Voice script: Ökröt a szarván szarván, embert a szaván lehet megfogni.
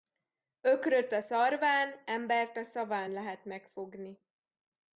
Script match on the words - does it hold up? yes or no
no